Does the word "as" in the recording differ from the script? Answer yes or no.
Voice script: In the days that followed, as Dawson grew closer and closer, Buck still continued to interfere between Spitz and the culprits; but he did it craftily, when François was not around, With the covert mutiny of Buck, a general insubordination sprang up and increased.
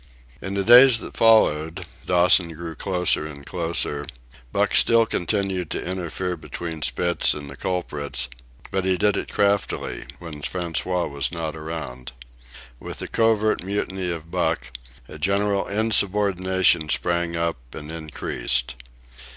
yes